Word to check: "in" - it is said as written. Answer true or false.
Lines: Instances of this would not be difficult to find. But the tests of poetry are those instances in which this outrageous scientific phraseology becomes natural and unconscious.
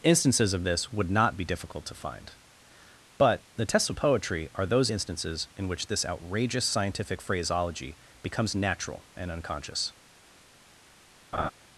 true